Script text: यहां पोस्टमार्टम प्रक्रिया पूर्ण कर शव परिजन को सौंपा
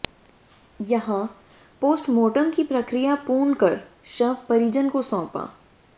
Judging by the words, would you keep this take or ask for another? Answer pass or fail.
fail